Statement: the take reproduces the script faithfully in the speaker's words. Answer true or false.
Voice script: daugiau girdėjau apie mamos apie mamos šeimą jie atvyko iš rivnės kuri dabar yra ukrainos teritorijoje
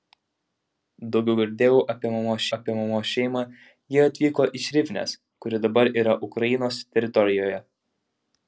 true